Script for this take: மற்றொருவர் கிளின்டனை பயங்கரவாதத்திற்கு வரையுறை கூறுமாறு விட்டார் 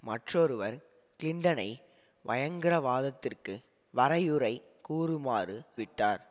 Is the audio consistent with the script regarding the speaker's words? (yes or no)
yes